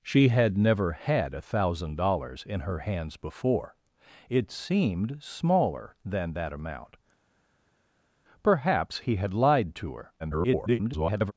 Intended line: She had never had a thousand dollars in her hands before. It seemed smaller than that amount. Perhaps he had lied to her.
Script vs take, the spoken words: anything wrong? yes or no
yes